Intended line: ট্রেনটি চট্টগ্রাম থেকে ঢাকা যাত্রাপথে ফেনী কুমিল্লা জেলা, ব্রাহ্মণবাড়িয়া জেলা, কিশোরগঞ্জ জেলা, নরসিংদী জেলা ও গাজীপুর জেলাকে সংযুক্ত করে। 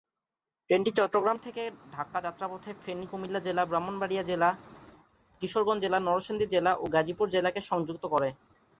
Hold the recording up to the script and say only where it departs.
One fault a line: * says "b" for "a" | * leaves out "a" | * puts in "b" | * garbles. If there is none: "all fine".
all fine